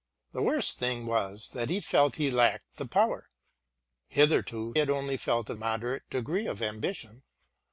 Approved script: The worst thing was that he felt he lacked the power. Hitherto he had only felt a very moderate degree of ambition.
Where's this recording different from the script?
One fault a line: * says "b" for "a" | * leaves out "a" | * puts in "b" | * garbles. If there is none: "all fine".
* leaves out "he"
* leaves out "very"